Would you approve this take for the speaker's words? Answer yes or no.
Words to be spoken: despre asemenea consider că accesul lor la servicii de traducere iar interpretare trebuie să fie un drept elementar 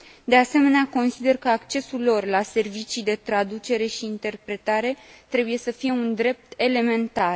no